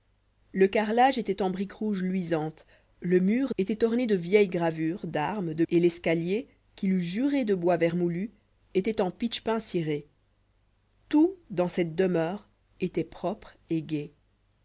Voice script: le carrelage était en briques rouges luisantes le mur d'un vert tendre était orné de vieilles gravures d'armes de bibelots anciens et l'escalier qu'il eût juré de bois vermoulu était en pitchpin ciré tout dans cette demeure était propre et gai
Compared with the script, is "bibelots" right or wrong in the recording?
wrong